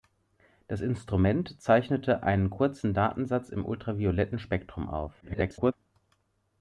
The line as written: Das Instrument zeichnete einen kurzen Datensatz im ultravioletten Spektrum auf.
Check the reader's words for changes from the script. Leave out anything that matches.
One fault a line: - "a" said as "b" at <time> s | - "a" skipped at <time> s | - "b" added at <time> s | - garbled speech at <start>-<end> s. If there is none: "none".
- garbled speech at 5.2-5.7 s